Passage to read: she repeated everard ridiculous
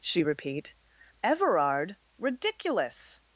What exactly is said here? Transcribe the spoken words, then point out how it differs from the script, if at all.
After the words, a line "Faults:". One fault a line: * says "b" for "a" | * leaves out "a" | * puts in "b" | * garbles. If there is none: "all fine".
she repeat everard ridiculous
Faults:
* says "repeat" for "repeated"